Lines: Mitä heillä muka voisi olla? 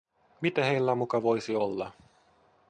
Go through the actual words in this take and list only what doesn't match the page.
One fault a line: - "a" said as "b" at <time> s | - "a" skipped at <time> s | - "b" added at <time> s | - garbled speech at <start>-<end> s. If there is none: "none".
none